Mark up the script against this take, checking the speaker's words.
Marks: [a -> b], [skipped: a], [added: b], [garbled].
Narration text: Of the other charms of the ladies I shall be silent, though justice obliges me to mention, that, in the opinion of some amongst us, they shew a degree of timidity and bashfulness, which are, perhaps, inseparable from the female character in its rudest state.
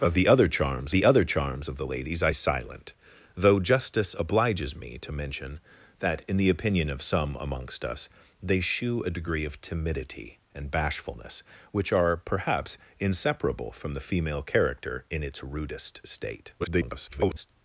Of the other charms [added: the other charms] of the ladies I [skipped: shall be] silent, though justice obliges me to mention, that, in the opinion of some amongst us, they shew a degree of timidity and bashfulness, which are, perhaps, inseparable from the female character in its rudest state. [garbled]